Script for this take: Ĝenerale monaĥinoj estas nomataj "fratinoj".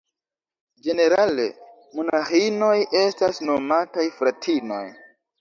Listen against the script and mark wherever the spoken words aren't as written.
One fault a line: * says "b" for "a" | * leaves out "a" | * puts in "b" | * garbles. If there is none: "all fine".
all fine